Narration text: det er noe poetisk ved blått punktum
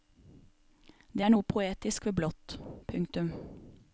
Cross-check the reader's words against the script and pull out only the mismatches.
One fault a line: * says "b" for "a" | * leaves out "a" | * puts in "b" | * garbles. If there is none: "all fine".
all fine